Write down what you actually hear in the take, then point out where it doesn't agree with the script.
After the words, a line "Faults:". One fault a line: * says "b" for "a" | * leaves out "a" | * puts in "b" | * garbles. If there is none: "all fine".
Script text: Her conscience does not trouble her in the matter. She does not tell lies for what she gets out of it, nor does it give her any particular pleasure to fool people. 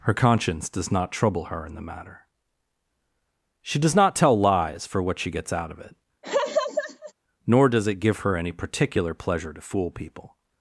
Her conscience does not trouble her in the matter. She does not tell lies for what she gets out of it, nor does it give her any particular pleasure to fool people.
Faults:
all fine